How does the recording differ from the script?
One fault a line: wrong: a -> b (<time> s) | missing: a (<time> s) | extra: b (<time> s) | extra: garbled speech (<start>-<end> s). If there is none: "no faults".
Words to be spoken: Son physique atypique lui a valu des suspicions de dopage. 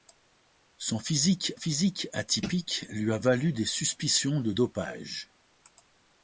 extra: physique (1.5 s)